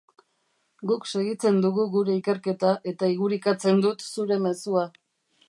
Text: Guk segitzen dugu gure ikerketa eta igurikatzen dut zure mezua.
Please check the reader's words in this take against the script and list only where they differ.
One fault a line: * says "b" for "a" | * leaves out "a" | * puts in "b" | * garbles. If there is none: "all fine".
all fine